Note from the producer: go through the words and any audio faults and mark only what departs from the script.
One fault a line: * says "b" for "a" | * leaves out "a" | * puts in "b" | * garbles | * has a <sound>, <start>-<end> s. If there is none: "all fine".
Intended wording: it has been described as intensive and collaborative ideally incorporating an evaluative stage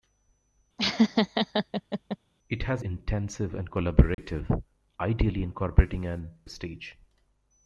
* has a laugh, 0.8-2.2 s
* leaves out "been described as"
* has a dropout, 4.1-4.2 s
* leaves out "evaluative"